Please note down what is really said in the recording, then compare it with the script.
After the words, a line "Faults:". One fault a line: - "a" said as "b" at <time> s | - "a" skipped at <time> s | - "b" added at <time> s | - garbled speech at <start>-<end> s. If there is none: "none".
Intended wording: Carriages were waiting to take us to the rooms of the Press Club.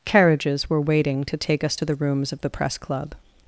Carriages were waiting to take us to the rooms of the Press Club.
Faults:
none